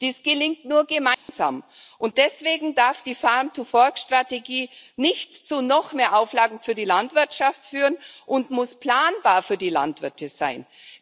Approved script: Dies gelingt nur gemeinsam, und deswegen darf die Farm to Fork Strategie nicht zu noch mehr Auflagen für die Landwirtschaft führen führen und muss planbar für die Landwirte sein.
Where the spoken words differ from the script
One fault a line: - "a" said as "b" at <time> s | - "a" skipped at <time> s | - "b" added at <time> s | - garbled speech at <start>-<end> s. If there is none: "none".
- "führen" skipped at 8.0 s